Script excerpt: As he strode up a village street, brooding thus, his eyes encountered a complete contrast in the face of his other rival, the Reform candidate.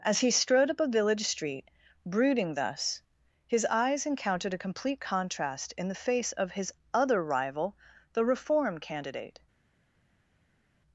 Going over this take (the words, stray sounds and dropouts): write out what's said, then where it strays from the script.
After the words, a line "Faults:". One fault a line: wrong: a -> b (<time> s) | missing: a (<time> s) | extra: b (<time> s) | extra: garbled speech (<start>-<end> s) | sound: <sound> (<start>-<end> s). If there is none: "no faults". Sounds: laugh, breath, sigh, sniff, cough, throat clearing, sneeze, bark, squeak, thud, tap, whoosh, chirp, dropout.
As he strode up a village street, brooding thus, his eyes encountered a complete contrast in the face of his other rival, the Reform candidate.
Faults:
no faults